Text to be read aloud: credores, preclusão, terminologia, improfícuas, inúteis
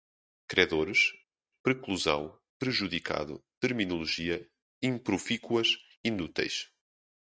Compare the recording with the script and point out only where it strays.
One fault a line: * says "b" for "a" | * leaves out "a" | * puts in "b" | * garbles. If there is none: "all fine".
* puts in "prejudicado"